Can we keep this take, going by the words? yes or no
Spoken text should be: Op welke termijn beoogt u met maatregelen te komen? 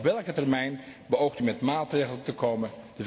yes